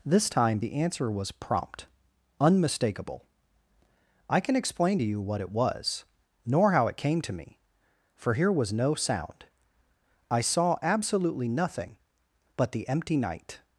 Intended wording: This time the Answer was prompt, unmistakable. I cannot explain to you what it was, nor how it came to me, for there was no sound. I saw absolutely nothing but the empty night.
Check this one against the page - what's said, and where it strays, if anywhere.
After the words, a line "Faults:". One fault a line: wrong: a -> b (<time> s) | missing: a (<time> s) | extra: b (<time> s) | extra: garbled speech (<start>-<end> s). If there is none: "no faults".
This time the Answer was prompt, unmistakable. I can explain to you what it was, nor how it came to me, for here was no sound. I saw absolutely nothing but the empty night.
Faults:
wrong: cannot -> can (4.4 s)
wrong: there -> here (8.3 s)